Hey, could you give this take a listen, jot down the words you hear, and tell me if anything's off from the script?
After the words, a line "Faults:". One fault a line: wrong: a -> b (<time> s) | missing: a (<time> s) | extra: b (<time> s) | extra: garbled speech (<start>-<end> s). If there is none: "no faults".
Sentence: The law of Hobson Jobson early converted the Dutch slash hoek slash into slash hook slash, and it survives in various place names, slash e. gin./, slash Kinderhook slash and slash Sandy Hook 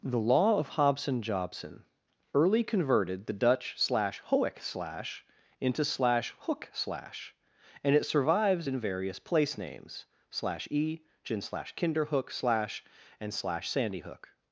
The law of Hobson Jobson early converted the Dutch slash hoek slash into slash hook slash, and it survives in various place names, slash e. gin./, slash Kinderhook slash and slash Sandy Hook
Faults:
no faults